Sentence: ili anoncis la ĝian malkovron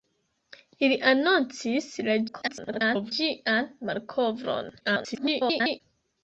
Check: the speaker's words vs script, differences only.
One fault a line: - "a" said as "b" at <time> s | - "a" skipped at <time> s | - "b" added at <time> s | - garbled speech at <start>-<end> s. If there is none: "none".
- garbled speech at 2.3-3.1 s
- garbled speech at 4.8-5.8 s